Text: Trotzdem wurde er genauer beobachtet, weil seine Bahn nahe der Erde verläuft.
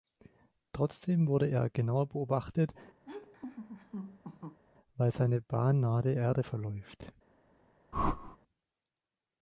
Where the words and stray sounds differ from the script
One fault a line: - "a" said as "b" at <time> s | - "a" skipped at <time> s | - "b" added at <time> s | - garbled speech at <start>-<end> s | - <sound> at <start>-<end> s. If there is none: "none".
- laugh at 3.0-4.6 s
- whoosh at 7.9-8.4 s